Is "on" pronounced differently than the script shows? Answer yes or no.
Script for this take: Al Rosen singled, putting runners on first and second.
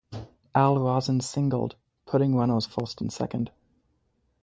yes